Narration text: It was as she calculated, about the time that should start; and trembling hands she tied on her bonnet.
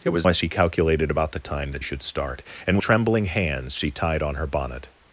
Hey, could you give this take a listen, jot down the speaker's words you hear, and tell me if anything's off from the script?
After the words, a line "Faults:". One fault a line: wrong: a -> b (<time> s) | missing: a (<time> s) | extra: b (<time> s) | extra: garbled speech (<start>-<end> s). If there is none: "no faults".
It was as she calculated, about the time that should start; and trembling hands she tied on her bonnet.
Faults:
no faults